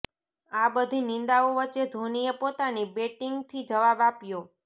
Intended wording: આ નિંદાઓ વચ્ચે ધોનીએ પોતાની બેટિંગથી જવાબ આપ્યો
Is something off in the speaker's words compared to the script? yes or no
yes